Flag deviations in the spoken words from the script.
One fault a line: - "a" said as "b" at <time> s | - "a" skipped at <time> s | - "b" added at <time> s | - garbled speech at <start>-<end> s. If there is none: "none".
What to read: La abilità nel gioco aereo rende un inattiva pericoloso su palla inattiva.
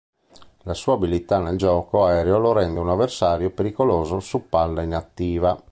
- "sua" added at 0.7 s
- "lo" added at 2.4 s
- "inattiva" said as "avversario" at 2.9 s